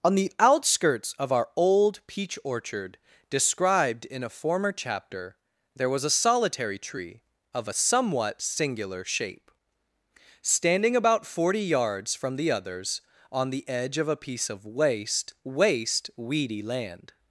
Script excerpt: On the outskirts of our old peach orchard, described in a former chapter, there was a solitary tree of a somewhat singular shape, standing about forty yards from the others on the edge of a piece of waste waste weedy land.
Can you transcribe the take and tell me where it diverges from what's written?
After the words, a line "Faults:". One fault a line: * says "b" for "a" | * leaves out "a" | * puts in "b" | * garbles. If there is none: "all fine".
On the outskirts of our old peach orchard, described in a former chapter, there was a solitary tree of a somewhat singular shape, standing about forty yards from the others on the edge of a piece of waste waste weedy land.
Faults:
all fine